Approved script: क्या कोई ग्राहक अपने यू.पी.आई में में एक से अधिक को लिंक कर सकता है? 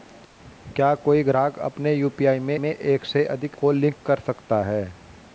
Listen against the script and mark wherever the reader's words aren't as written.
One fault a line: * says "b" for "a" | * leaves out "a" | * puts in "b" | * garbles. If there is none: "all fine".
all fine